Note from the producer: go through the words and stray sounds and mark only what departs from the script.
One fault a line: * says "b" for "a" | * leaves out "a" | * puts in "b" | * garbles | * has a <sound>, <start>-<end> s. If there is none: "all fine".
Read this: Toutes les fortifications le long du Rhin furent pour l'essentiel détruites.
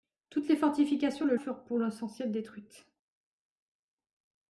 * leaves out "long du Rhin"